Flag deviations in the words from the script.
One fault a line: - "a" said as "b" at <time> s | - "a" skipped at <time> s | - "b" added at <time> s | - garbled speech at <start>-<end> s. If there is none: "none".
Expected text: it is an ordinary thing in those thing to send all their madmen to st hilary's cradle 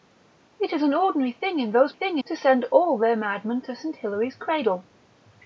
none